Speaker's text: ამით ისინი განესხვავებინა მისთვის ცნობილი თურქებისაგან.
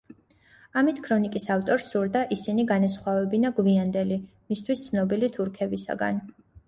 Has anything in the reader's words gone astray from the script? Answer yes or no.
yes